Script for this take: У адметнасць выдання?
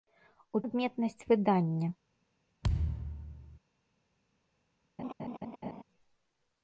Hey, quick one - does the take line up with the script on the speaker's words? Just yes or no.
yes